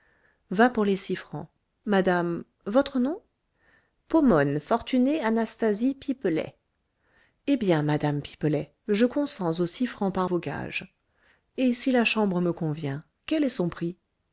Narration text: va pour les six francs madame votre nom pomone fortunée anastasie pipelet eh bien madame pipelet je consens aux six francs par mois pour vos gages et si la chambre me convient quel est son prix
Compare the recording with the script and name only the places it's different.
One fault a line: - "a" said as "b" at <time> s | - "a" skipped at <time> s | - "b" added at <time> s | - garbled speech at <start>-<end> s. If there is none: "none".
- "mois pour" skipped at 10.3 s